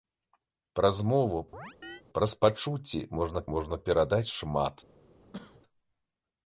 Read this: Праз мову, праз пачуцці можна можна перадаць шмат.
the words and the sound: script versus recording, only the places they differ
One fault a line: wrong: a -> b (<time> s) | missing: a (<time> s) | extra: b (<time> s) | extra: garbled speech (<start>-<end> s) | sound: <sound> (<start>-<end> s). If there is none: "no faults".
sound: chirp (1.5-2.0 s)
sound: cough (5.2-5.6 s)